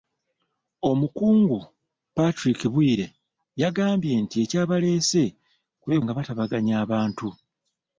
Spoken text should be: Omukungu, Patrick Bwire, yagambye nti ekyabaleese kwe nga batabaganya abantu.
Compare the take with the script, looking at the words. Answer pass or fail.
pass